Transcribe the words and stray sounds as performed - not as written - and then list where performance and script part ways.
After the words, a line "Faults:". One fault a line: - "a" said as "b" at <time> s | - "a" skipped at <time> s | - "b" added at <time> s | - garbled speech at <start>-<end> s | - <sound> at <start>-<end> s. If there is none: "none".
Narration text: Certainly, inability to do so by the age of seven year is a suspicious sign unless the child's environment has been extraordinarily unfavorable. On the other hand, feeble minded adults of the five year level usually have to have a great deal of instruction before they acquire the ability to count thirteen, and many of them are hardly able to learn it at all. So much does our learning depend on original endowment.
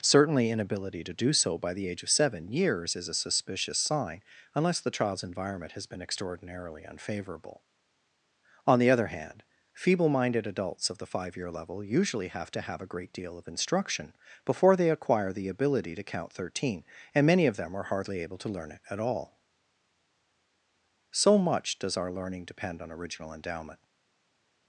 Certainly, inability to do so by the age of seven years is a suspicious sign unless the child's environment has been extraordinarily unfavorable. On the other hand, feeble minded adults of the five year level usually have to have a great deal of instruction before they acquire the ability to count thirteen, and many of them are hardly able to learn it at all. So much does our learning depend on original endowment.
Faults:
- "year" said as "years" at 2.5 s